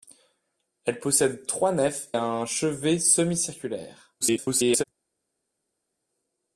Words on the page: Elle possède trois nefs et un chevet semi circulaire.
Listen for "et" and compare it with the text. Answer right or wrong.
wrong